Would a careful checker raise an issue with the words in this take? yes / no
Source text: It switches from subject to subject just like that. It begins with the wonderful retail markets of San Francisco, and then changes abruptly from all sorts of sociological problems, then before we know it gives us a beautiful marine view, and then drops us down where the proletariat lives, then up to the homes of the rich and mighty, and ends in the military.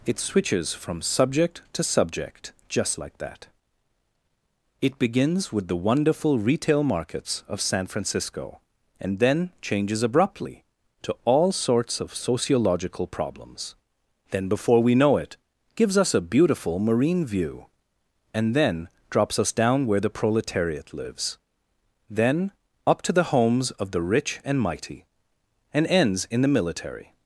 yes